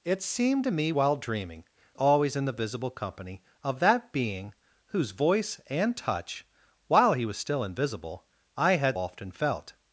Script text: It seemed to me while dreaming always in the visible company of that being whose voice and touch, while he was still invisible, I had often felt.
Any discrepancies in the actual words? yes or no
no